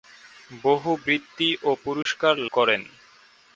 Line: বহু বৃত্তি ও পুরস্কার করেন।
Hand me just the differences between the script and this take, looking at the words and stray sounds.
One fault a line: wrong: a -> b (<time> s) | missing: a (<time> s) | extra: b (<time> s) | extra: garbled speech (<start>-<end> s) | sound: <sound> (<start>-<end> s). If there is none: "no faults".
sound: dropout (2.0-2.1 s)